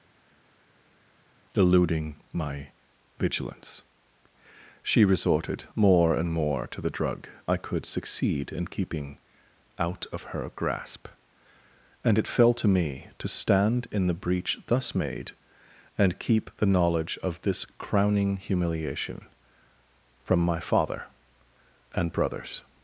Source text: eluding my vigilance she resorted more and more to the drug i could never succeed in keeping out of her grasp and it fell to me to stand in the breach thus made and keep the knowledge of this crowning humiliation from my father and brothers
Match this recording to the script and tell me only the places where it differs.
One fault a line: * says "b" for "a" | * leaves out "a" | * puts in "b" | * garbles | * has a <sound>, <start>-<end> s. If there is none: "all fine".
* leaves out "never"